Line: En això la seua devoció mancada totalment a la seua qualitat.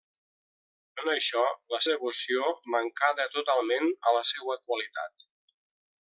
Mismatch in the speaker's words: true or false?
true